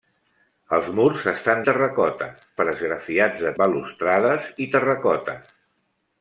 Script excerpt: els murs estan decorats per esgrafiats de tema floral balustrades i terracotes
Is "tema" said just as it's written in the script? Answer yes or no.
no